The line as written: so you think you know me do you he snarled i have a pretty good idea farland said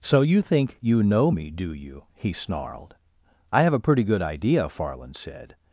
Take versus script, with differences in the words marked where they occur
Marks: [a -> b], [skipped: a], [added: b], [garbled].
so you think you know me do you he snarled i have a pretty good idea farland said